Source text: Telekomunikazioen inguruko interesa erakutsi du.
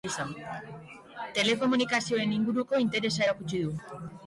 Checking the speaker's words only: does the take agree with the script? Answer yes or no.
yes